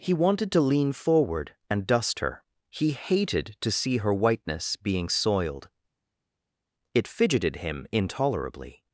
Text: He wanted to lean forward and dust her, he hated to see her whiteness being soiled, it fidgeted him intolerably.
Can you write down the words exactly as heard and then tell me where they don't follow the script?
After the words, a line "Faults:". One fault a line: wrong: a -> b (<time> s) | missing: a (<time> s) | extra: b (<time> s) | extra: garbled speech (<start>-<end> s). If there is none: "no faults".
He wanted to lean forward and dust her, he hated to see her whiteness being soiled, it fidgeted him intolerably.
Faults:
no faults